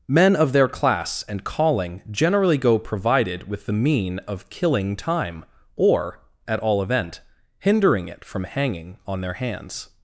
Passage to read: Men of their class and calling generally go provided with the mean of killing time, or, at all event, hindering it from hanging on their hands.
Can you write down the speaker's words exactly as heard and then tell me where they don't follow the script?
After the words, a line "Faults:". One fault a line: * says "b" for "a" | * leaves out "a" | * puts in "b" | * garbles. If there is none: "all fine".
Men of their class and calling generally go provided with the mean of killing time, or, at all event, hindering it from hanging on their hands.
Faults:
all fine